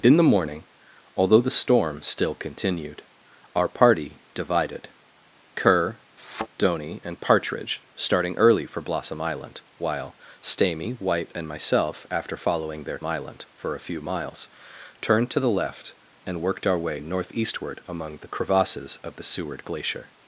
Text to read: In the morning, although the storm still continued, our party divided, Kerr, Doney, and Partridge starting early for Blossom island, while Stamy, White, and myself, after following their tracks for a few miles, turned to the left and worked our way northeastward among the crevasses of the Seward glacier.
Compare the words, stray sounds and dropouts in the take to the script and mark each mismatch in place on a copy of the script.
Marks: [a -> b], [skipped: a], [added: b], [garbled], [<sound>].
In the morning, although the storm still continued, our party divided, Kerr, [thud] Doney, and Partridge starting early for Blossom island, while Stamy, White, and myself, after following their [tracks -> island] for a few miles, turned to the left and worked our way northeastward among the crevasses of the Seward glacier.